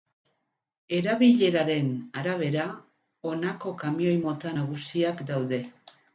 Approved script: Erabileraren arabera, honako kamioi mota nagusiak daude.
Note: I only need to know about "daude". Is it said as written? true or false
true